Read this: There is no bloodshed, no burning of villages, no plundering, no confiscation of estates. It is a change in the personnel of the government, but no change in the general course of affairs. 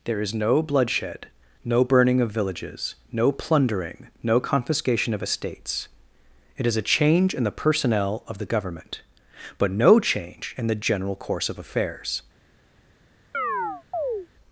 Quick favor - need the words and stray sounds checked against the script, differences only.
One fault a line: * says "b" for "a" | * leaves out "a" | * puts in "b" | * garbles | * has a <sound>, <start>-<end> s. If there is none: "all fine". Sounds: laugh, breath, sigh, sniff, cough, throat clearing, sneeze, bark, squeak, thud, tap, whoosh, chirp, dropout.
* has a chirp, 13.3-14.3 s